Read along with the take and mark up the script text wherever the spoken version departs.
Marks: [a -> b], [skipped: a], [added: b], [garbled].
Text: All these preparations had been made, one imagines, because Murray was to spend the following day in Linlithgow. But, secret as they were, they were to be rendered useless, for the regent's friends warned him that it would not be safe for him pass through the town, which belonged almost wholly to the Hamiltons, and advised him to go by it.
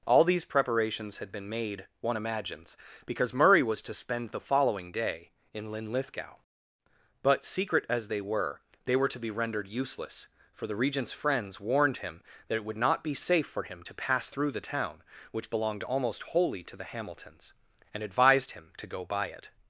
All these preparations had been made, one imagines, because Murray was to spend the following day in Linlithgow. But, secret as they were, they were to be rendered useless, for the regent's friends warned him that it would not be safe for him [added: to] pass through the town, which belonged almost wholly to the Hamiltons, and advised him to go by it.